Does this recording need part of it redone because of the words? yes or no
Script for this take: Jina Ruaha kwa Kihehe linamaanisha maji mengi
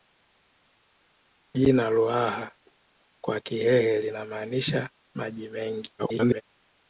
yes